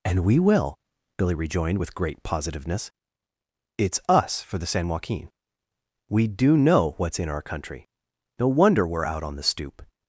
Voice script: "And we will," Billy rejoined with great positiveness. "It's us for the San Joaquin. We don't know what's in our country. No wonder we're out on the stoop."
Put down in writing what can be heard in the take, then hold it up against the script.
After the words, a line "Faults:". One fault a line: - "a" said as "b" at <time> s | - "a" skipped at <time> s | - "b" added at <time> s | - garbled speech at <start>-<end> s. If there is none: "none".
"And we will," Billy rejoined with great positiveness. "It's us for the San Joaquin. We do know what's in our country. No wonder we're out on the stoop."
Faults:
- "don't" said as "do" at 6.3 s